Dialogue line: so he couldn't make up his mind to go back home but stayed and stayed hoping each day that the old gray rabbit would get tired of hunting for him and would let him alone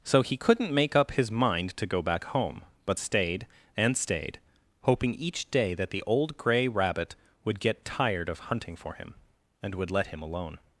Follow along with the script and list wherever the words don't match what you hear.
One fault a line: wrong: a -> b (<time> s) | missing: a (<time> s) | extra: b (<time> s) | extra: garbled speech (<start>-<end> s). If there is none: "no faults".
no faults